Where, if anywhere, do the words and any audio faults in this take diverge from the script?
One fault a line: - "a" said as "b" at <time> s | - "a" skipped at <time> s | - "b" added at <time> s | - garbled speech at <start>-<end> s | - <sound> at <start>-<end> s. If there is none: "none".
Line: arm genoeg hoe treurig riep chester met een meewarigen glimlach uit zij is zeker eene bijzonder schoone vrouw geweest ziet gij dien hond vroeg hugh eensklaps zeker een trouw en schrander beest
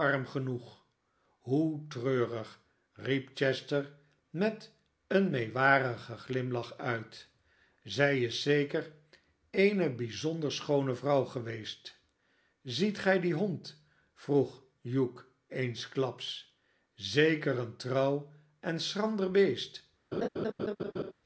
- laugh at 20.1-21.1 s